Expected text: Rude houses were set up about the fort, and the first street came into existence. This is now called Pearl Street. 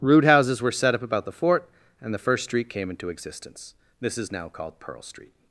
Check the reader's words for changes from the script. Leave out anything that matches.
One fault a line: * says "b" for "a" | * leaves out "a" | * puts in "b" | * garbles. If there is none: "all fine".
all fine